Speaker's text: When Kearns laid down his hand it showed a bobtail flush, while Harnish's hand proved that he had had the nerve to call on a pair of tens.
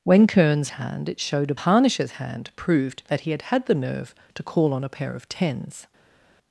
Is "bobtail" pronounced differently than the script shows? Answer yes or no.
yes